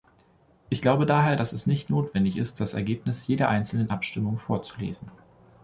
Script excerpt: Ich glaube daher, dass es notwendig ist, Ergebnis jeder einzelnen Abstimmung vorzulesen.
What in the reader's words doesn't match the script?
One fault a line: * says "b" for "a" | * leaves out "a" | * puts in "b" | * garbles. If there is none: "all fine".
* puts in "nicht"
* puts in "das"